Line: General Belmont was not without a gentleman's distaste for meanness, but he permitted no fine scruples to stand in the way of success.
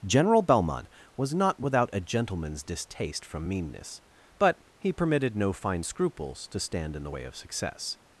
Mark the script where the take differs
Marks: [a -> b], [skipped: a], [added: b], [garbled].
General Belmont was not without a gentleman's distaste [for -> from] meanness, but he permitted no fine scruples to stand in the way of success.